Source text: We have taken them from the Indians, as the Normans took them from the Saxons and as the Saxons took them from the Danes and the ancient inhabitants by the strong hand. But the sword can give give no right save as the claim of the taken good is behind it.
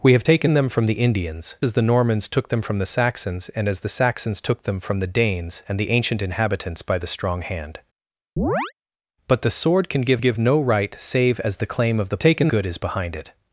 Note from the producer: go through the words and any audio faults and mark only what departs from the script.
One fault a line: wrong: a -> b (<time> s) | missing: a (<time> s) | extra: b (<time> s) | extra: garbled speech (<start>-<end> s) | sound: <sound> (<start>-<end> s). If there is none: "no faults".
sound: chirp (8.4-8.7 s)